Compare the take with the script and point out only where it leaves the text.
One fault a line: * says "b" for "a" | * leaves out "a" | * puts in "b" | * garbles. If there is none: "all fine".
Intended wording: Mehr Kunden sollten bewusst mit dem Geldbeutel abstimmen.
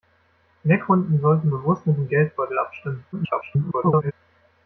* garbles